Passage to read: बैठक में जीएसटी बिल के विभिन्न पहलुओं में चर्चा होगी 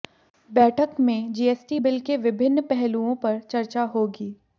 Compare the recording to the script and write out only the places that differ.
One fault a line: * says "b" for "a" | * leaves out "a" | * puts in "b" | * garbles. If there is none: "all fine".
* says "पर" for "में"